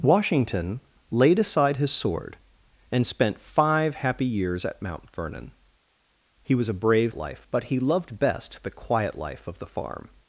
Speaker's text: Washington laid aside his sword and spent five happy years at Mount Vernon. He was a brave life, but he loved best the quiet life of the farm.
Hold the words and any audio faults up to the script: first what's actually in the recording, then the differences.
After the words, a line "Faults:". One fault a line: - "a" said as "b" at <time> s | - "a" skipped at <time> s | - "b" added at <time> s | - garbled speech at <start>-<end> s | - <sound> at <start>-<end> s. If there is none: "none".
Washington laid aside his sword and spent five happy years at Mount Vernon. He was a brave life, but he loved best the quiet life of the farm.
Faults:
none